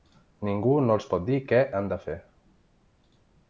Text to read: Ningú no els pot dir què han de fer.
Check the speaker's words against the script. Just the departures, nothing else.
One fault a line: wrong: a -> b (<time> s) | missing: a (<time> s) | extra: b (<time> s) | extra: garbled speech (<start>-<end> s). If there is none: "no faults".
no faults